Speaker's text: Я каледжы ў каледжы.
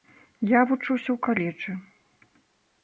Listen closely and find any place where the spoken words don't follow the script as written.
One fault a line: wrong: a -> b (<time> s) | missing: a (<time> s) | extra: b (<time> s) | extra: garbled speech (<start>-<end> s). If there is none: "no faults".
wrong: каледжы -> вучуся (0.7 s)